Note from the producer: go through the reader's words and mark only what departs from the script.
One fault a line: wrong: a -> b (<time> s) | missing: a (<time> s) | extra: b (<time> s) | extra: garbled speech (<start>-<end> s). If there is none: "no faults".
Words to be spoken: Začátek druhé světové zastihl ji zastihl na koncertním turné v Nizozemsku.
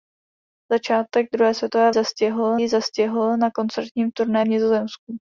no faults